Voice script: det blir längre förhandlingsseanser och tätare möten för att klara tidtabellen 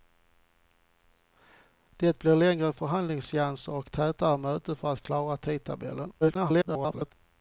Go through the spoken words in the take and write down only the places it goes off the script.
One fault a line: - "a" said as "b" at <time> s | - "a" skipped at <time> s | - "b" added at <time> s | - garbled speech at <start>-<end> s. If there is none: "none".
- garbled speech at 6.2-7.1 s